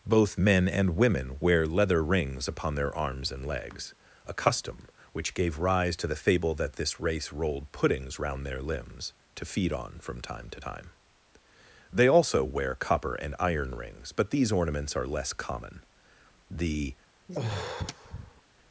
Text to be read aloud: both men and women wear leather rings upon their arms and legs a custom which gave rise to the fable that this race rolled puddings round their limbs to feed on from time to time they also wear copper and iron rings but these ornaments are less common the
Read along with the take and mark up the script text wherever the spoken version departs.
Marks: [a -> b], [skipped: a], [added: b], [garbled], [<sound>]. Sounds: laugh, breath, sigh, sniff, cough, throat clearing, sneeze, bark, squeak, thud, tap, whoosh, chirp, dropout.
both men and women wear leather rings upon their arms and legs a custom which gave rise to the fable that this race rolled puddings round their limbs to feed on from time to time they also wear copper and iron rings but these ornaments are less common the [sigh]